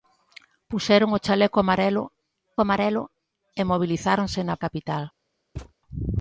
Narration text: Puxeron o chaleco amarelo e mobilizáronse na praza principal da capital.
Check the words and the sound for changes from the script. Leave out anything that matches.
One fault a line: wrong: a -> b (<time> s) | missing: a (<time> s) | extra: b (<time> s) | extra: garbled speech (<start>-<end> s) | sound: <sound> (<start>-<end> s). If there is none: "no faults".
extra: amarelo (2.6 s)
missing: praza principal da (4.6 s)
sound: thud (5.6-5.7 s)